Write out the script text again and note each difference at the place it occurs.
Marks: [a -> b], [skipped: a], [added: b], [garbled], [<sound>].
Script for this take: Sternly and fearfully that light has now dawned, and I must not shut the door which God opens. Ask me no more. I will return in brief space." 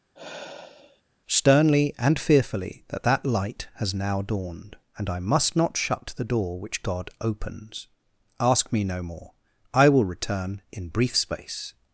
[sigh] Sternly and fearfully that [added: that] light has now dawned, and I must not shut the door which God opens. Ask me no more. I will return in brief space."